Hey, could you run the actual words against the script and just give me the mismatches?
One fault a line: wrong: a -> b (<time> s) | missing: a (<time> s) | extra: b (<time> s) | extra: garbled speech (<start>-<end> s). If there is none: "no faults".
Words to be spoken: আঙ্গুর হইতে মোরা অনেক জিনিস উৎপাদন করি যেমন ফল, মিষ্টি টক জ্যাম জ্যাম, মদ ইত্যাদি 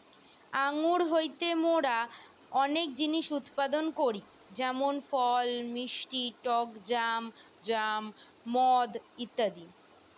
no faults